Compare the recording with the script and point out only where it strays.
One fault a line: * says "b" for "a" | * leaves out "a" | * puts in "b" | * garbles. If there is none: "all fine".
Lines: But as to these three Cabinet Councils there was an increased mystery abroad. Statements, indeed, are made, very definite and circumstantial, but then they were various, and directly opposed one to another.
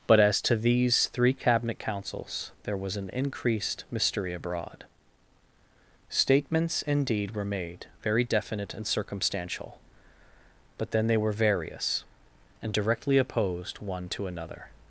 * says "were" for "are"